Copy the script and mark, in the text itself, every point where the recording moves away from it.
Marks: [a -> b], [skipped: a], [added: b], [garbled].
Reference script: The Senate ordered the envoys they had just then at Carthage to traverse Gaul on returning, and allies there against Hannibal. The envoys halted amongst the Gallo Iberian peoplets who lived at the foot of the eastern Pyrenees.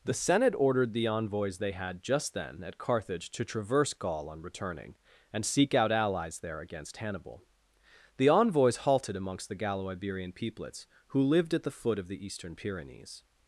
The Senate ordered the envoys they had just then at Carthage to traverse Gaul on returning, and [added: seek out] allies there against Hannibal. The envoys halted amongst the Gallo Iberian peoplets who lived at the foot of the eastern Pyrenees.